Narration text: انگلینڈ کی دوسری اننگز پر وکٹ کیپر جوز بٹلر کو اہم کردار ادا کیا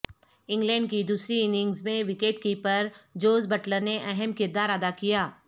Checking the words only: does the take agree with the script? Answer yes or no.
no